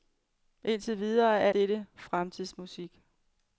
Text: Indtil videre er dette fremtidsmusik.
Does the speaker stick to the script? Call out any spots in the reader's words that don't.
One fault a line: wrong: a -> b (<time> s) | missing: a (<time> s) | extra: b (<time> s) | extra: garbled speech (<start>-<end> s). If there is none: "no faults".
no faults